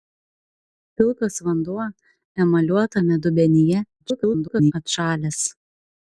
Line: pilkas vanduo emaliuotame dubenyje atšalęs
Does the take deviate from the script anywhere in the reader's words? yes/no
yes